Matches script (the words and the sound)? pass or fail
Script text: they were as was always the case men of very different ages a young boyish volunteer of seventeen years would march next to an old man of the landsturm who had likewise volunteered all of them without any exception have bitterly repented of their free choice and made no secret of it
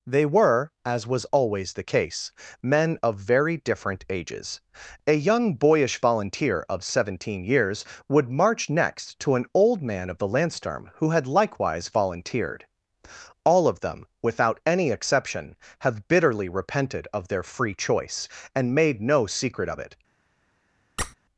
fail